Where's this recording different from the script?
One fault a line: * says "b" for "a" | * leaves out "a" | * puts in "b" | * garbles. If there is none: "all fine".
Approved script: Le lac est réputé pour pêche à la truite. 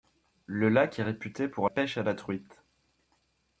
all fine